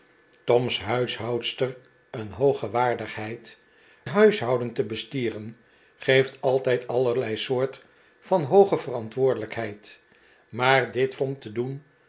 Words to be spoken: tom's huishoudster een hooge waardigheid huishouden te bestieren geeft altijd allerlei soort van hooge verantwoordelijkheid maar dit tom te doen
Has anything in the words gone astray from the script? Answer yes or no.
no